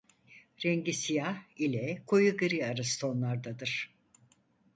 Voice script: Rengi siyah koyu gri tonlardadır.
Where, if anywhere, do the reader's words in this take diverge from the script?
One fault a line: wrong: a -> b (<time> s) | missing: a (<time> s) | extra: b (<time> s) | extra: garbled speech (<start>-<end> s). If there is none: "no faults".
extra: ile (1.6 s)
extra: arası (2.7 s)